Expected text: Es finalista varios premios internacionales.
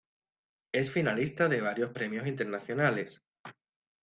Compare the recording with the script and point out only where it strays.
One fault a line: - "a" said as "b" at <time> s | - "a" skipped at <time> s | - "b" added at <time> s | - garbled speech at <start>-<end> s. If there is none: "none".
- "de" added at 1.5 s